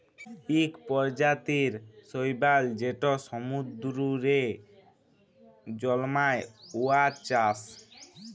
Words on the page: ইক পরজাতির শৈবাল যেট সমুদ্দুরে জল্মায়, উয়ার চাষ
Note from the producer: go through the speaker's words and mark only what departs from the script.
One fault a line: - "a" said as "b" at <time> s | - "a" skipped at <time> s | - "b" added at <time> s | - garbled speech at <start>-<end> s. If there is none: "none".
none